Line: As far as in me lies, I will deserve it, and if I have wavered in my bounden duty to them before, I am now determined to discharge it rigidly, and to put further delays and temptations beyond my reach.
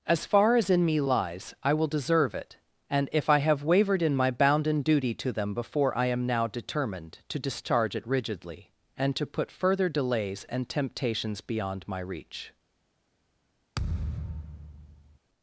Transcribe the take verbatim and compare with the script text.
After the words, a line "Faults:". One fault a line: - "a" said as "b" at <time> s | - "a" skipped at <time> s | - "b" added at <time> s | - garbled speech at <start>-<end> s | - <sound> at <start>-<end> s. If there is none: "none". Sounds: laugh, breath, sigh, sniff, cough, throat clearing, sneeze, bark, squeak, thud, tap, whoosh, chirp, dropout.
As far as in me lies, I will deserve it, and if I have wavered in my bounden duty to them before, I am now determined to discharge it rigidly, and to put further delays and temptations beyond my reach.
Faults:
- thud at 13.7-15.2 s